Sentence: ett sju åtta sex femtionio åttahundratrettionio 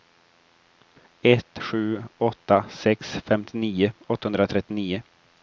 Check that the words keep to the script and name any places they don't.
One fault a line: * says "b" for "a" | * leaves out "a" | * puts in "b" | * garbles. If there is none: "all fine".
all fine